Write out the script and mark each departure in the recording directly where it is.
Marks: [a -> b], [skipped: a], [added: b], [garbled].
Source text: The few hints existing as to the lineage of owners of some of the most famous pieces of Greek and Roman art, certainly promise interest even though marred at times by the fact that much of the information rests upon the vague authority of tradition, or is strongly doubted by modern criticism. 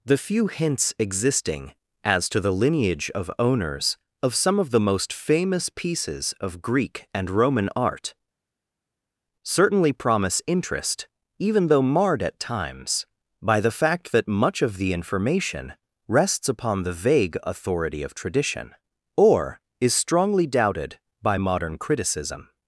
The few hints existing as to the lineage of owners of some of the most famous pieces of Greek and Roman art, certainly promise interest even though marred at times by the fact that much of the information rests upon the vague authority of tradition, or is strongly doubted by modern criticism.